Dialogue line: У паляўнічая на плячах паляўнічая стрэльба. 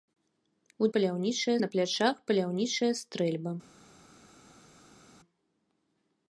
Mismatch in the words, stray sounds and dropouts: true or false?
false